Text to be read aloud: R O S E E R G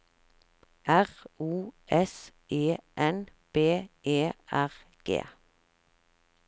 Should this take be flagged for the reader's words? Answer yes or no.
yes